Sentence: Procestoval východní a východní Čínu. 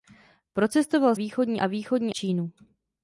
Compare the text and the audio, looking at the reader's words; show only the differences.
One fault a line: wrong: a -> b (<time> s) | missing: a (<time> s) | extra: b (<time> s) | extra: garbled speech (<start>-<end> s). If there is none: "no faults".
no faults